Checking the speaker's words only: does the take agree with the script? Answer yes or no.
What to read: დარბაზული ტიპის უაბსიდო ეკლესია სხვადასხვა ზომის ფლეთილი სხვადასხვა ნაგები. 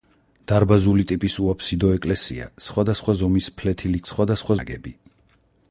yes